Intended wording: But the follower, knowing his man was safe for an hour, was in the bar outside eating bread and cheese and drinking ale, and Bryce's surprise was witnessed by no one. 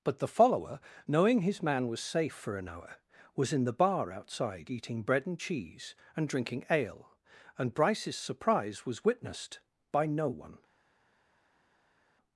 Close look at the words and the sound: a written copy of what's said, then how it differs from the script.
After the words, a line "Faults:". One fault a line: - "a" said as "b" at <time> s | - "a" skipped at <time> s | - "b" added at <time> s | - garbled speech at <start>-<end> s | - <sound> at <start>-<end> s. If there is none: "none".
But the follower, knowing his man was safe for an hour, was in the bar outside eating bread and cheese and drinking ale, and Bryce's surprise was witnessed by no one.
Faults:
none